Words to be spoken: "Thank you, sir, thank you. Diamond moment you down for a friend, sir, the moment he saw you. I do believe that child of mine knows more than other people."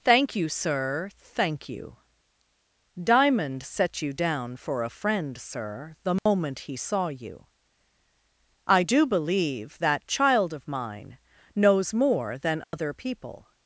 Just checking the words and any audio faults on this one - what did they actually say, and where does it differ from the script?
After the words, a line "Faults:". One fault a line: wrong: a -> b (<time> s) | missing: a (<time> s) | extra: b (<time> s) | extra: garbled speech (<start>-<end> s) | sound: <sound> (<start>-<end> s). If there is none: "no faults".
"Thank you, sir, thank you. Diamond set you down for a friend, sir, the moment he saw you. I do believe that child of mine knows more than other people."
Faults:
wrong: moment -> set (3.6 s)
sound: dropout (6.2-6.3 s)
sound: dropout (12.6-12.7 s)